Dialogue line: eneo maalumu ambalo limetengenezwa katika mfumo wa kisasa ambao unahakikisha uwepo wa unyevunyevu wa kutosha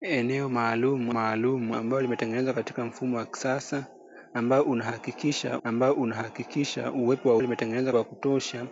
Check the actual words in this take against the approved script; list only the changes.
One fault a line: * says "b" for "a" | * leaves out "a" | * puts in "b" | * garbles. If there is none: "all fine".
* puts in "maalumu"
* puts in "ambao unahakikisha"
* says "limetengenezwa" for "unyevunyevu"